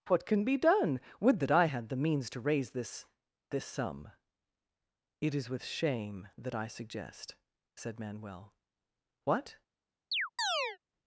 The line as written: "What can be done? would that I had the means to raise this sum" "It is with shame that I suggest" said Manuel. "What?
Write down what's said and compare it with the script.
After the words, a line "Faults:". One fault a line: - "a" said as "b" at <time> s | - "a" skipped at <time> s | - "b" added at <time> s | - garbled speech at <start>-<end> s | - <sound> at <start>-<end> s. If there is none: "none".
"What can be done? would that I had the means to raise this this sum" "It is with shame that I suggest" said Manuel. "What?
Faults:
- "this" added at 3.5 s
- chirp at 10.1-10.8 s